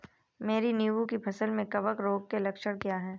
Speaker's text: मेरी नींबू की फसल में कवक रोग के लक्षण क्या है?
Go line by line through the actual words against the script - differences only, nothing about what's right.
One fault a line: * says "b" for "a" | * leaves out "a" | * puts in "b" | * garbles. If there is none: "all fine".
all fine